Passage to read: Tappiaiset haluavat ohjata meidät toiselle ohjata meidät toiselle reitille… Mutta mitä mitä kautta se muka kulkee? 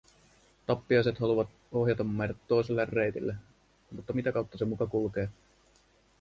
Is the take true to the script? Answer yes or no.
no